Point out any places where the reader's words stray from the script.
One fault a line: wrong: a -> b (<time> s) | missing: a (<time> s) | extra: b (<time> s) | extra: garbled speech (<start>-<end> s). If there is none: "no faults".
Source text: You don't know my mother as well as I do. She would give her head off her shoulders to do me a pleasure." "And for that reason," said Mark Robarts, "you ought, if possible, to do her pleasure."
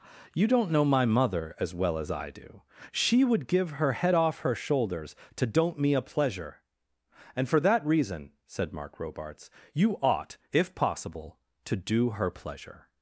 wrong: do -> don't (5.5 s)